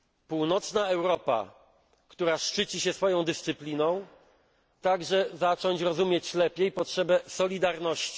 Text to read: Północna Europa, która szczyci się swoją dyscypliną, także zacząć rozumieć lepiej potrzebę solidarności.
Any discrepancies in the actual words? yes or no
no